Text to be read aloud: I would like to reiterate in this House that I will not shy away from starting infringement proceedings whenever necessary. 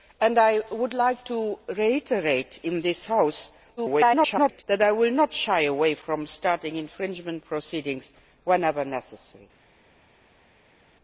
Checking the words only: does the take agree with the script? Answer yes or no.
no